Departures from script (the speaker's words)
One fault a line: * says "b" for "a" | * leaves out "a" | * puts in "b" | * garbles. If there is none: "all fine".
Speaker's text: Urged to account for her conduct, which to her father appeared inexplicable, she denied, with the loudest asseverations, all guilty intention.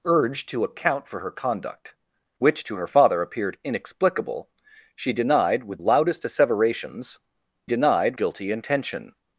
* leaves out "the"
* says "denied" for "all"